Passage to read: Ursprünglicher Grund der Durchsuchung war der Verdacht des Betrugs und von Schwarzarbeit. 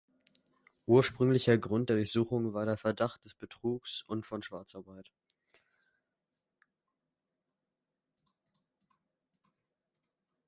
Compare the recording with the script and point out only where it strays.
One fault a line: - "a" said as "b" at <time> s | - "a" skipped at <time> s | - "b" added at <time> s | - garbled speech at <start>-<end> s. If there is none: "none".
none